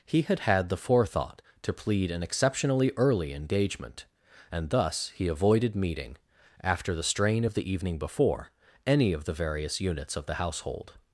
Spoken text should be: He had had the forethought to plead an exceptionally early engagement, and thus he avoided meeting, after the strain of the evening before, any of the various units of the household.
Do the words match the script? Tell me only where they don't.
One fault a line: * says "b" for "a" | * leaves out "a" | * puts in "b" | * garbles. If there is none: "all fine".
all fine